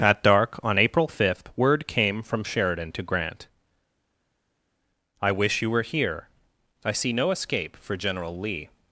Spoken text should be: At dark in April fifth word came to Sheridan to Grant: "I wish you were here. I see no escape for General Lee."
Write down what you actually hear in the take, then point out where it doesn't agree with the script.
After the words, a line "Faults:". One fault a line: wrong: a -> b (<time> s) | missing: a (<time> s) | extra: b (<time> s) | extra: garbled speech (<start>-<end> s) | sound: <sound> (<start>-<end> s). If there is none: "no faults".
At dark on April fifth word came from Sheridan to Grant: "I wish you were here. I see no escape for General Lee."
Faults:
wrong: in -> on (0.6 s)
wrong: to -> from (2.2 s)